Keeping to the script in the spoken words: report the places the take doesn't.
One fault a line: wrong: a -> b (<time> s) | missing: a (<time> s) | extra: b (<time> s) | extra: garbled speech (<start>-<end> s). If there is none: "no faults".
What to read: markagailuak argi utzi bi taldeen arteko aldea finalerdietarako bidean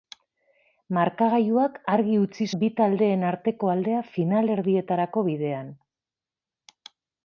no faults